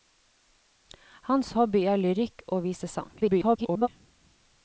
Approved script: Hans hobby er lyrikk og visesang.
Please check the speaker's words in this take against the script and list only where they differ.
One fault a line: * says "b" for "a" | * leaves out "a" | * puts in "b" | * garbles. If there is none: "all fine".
* garbles